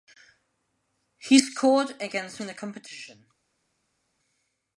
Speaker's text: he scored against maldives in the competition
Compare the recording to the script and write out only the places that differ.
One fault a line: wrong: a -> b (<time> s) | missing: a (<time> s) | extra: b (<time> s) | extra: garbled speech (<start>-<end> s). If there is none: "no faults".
missing: maldives (2.4 s)